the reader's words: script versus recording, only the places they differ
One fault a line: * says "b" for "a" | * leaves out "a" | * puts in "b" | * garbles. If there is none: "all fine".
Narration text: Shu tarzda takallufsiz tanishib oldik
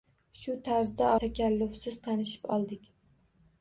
all fine